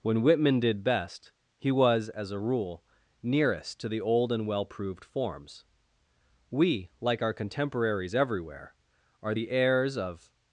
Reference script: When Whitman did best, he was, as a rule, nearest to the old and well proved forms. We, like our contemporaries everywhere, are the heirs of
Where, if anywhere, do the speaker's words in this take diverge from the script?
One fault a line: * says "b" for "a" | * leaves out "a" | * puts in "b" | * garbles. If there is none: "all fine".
all fine